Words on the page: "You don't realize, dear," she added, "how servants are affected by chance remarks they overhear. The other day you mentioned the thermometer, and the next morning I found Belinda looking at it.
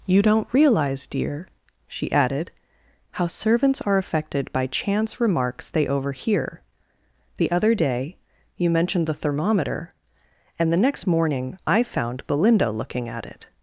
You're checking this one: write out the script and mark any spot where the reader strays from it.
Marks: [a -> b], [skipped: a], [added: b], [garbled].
"You don't realize, dear," she added, "how servants are affected by chance remarks they overhear. The other day you mentioned the thermometer, and the next morning I found Belinda looking at it.